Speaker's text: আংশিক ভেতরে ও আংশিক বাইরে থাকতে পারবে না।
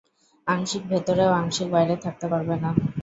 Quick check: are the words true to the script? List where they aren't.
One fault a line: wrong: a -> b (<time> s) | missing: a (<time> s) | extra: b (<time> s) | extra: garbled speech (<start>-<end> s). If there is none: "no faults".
no faults